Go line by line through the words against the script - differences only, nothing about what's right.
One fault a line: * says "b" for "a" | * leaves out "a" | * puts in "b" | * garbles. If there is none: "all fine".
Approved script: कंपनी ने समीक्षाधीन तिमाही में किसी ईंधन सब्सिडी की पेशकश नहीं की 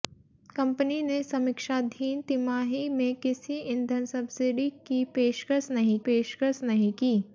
* puts in "पेशकश नहीं"